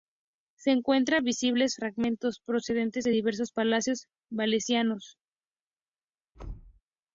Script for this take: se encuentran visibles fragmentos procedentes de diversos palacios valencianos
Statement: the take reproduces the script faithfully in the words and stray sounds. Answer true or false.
false